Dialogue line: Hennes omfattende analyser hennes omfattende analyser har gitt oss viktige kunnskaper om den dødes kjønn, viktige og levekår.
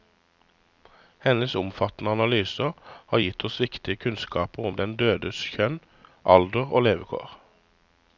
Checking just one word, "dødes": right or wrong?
right